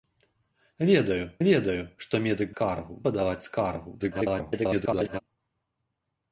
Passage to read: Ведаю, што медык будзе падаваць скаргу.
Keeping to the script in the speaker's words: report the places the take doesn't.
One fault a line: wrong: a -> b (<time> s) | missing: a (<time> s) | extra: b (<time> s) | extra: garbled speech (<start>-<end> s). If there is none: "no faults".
extra: ведаю (1.5 s)
wrong: будзе -> скаргу (2.6 s)
extra: garbled speech (4.0-5.2 s)